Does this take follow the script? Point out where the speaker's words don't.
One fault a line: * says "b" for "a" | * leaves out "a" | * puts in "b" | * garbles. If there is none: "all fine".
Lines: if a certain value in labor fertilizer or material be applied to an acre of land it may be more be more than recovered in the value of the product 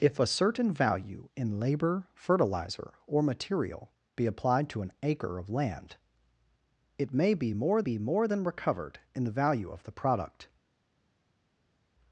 all fine